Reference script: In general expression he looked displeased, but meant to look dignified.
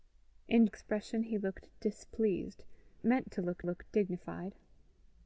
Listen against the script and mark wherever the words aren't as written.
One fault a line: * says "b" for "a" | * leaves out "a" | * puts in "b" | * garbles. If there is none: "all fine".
* leaves out "general"
* leaves out "but"
* puts in "look"